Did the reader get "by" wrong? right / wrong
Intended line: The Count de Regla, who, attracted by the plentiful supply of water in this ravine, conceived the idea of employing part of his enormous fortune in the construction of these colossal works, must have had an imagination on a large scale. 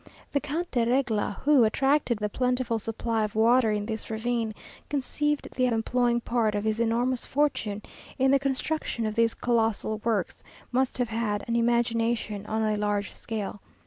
wrong